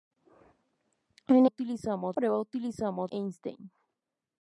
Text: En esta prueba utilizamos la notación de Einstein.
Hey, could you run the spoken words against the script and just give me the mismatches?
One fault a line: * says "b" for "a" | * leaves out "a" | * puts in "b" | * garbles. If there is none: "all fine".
* says "utilizamos" for "esta"
* leaves out "la notación de"